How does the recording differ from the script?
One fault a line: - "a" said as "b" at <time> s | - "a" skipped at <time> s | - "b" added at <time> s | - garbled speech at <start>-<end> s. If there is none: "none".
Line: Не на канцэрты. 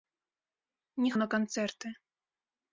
none